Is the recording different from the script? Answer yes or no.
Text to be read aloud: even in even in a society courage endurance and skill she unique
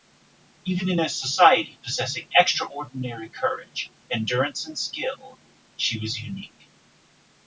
yes